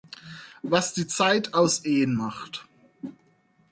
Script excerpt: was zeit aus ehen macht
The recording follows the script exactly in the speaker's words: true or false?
false